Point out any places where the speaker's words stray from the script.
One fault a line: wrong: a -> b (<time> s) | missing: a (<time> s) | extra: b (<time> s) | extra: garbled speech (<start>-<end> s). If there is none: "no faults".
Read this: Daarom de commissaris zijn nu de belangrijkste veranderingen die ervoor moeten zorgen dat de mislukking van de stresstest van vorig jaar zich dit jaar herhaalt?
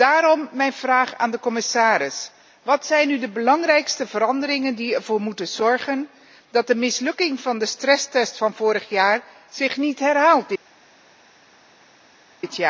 extra: mijn vraag aan (0.5 s)
extra: wat (2.6 s)
extra: niet (9.9 s)